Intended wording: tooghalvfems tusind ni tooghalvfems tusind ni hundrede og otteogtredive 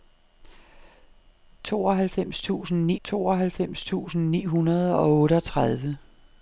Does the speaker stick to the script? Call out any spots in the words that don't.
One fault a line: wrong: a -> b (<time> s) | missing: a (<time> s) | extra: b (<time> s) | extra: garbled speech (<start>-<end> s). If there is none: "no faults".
no faults